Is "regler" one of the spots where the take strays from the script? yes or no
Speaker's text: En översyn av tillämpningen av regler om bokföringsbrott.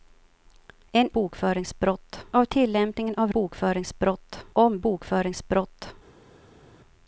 yes